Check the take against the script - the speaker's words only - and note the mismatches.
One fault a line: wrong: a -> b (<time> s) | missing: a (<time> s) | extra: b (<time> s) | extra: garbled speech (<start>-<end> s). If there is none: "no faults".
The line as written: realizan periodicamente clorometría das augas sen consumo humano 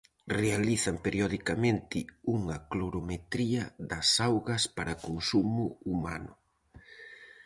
extra: unha (2.4 s)
wrong: sen -> para (4.8 s)